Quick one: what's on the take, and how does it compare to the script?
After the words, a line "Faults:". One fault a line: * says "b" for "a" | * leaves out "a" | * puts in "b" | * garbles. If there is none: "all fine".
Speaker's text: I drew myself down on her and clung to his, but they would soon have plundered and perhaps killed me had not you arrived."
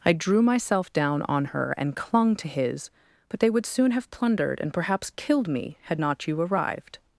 I drew myself down on her and clung to his, but they would soon have plundered and perhaps killed me had not you arrived."
Faults:
all fine